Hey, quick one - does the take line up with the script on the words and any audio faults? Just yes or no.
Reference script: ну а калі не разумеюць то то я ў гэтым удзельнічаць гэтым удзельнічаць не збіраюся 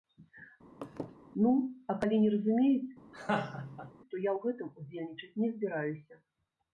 no